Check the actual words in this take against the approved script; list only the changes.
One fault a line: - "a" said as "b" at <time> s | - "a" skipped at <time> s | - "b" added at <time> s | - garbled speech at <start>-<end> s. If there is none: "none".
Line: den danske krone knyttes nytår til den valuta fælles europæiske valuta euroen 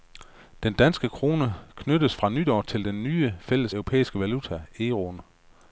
- "fra" added at 2.1 s
- "valuta" said as "nye" at 3.0 s